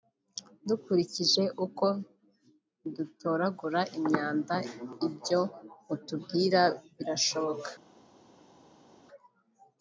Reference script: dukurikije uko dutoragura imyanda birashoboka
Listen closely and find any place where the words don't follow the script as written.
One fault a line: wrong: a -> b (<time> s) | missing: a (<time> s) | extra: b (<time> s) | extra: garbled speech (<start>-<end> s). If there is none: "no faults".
extra: ibyo mutubwira (5.1 s)